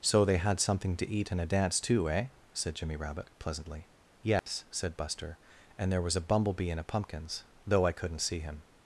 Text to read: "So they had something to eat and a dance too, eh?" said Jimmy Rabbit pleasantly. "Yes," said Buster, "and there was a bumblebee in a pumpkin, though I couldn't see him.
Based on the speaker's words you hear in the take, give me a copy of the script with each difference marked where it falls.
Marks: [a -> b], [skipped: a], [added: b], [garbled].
"So they had something to eat and a dance too, eh?" said Jimmy Rabbit pleasantly. "Yes," said Buster, "and there was a bumblebee in a [pumpkin, -> pumpkins] though I couldn't see him.